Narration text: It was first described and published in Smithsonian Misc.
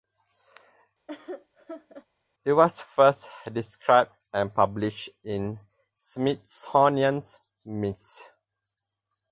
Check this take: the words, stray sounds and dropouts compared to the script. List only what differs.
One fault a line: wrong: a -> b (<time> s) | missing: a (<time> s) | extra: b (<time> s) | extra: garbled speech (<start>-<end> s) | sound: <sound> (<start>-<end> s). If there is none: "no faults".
sound: laugh (1.1-2.1 s)